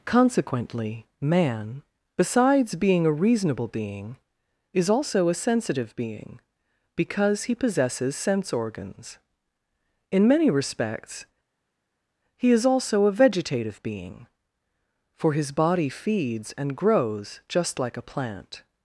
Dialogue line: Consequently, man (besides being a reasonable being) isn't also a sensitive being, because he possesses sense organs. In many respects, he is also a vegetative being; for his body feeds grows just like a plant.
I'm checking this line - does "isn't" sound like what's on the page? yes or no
no